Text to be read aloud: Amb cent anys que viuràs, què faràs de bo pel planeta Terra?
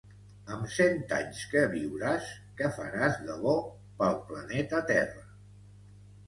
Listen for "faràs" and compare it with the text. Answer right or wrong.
right